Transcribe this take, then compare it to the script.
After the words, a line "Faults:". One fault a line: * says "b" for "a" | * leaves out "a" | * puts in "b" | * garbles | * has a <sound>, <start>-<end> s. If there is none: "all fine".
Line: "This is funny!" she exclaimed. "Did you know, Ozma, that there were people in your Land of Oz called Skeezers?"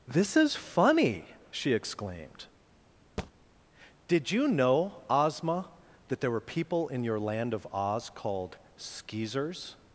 "This is funny!" she exclaimed. "Did you know, Ozma, that there were people in your Land of Oz called Skeezers?"
Faults:
* has a thud, 3.2-3.3 s